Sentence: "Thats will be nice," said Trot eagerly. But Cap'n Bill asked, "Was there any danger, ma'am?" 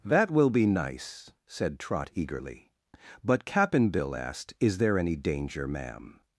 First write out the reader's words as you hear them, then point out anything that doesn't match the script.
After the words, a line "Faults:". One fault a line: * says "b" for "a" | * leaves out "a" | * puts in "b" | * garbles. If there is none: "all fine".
"That will be nice," said Trot eagerly. But Cap'n Bill asked, "Is there any danger, ma'am?"
Faults:
* says "That" for "Thats"
* says "Is" for "Was"